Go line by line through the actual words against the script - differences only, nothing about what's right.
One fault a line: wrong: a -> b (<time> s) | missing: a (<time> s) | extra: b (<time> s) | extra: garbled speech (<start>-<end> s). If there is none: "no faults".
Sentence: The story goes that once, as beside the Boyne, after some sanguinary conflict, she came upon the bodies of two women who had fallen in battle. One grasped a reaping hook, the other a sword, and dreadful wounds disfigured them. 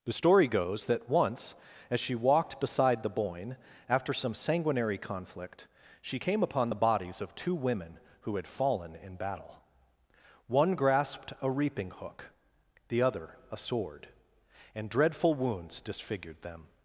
extra: she walked (2.0 s)